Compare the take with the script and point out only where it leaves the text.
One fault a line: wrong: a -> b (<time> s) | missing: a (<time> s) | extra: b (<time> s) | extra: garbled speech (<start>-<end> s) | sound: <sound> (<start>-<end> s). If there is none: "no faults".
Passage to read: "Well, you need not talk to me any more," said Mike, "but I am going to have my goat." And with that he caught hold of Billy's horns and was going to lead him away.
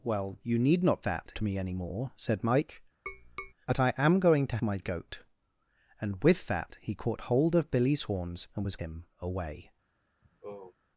wrong: talk -> that (1.0 s)
sound: tap (3.1-3.5 s)
missing: have (4.6 s)
missing: going to lead (8.8 s)
sound: sigh (10.2-10.8 s)